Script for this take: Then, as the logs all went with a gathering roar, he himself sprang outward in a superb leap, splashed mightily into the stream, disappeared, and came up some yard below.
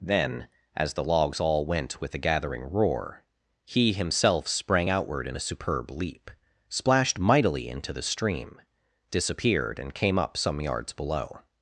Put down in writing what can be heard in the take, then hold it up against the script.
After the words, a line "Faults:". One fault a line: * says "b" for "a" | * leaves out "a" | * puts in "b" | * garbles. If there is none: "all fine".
Then, as the logs all went with a gathering roar, he himself sprang outward in a superb leap, splashed mightily into the stream, disappeared, and came up some yards below.
Faults:
* says "yards" for "yard"